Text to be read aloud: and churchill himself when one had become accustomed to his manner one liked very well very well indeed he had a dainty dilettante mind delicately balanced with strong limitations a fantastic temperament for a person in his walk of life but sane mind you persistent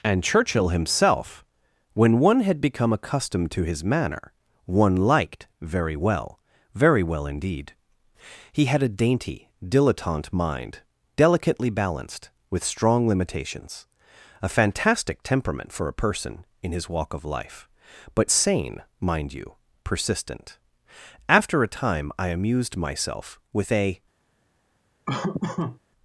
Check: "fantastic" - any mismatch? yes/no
no